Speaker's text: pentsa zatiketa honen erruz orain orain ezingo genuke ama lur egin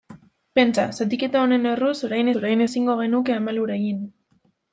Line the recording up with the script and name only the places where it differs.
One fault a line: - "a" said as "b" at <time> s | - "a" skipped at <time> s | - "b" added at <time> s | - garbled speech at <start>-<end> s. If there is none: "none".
none